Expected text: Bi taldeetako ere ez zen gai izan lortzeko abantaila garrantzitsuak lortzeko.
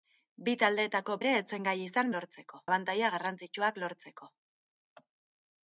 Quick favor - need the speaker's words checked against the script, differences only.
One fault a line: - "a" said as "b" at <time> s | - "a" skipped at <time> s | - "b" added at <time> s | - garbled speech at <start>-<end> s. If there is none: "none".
none